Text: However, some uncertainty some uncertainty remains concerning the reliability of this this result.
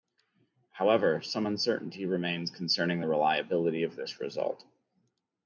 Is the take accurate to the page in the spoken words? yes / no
no